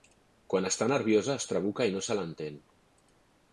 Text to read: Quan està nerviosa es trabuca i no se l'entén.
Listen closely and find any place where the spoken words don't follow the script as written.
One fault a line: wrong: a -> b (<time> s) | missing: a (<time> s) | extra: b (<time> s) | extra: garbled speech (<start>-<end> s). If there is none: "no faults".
no faults